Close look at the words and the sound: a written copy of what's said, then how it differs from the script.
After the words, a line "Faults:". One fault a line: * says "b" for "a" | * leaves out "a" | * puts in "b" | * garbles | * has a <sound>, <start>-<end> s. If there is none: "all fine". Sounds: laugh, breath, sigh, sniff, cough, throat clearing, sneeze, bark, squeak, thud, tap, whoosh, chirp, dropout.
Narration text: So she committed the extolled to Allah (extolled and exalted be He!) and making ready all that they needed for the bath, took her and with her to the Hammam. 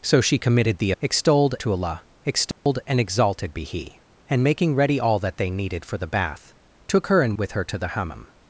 So she committed the extolled to Allah (extolled and exalted be He!) and making ready all that they needed for the bath, took her and with her to the Hammam.
Faults:
* has a dropout, 2.5-2.7 s